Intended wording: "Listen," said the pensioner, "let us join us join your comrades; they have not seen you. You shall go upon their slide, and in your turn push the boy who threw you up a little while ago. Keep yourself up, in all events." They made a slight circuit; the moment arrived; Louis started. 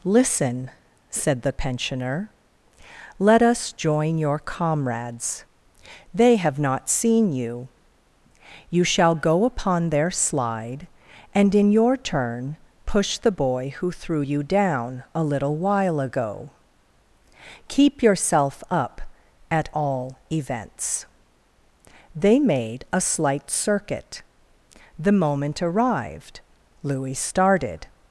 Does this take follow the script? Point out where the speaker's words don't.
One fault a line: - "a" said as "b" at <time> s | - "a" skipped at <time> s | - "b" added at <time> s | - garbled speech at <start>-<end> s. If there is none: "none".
- "us join" skipped at 4.2 s
- "up" said as "down" at 14.4 s
- "in" said as "at" at 19.5 s